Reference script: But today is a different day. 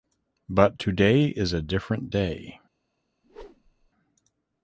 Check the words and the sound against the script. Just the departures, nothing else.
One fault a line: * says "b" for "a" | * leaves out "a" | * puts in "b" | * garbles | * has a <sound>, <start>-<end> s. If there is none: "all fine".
* has a whoosh, 3.2-3.9 s